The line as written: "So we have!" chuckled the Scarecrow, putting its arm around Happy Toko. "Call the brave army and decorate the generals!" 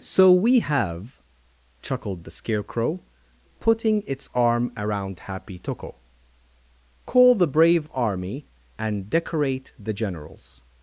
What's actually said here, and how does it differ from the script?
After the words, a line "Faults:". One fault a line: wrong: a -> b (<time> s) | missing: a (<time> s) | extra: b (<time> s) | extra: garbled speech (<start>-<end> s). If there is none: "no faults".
"So we have!" chuckled the Scarecrow, putting its arm around Happy Toko. "Call the brave army and decorate the generals!"
Faults:
no faults